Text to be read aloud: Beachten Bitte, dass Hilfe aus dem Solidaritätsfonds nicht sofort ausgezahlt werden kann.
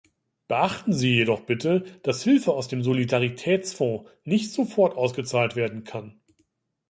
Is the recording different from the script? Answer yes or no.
yes